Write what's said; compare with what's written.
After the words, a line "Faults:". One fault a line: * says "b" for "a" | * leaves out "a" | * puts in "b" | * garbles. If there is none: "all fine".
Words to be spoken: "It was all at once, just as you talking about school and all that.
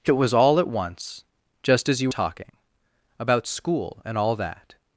"It was all at once, just as you talking about school and all that.
Faults:
all fine